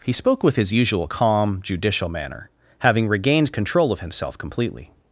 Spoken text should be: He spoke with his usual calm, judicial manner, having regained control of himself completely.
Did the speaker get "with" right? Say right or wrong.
right